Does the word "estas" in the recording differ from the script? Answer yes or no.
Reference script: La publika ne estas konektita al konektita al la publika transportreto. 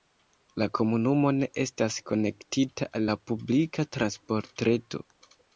no